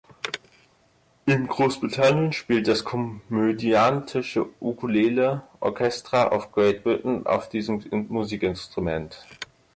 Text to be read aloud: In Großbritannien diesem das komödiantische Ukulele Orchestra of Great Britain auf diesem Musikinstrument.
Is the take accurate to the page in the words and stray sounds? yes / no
no